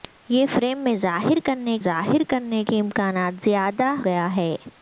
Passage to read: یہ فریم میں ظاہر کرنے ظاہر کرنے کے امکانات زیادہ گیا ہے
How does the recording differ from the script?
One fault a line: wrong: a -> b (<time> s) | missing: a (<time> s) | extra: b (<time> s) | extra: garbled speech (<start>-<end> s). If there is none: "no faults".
no faults